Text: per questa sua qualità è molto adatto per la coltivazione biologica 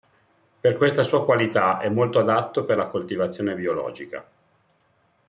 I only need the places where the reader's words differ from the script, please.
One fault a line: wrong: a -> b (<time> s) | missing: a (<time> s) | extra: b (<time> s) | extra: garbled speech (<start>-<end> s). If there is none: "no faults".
no faults